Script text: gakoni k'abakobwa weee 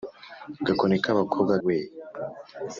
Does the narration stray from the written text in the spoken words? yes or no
no